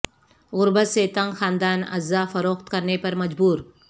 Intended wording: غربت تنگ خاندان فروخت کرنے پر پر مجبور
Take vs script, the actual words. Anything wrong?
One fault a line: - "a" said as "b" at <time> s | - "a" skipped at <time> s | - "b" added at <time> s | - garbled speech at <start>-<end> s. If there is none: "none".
- "سے" added at 0.9 s
- "اعضا" added at 1.8 s
- "پر" skipped at 3.2 s